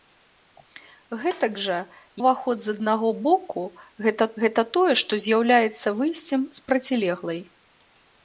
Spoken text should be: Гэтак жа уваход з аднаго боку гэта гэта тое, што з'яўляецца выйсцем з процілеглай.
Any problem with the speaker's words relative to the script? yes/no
no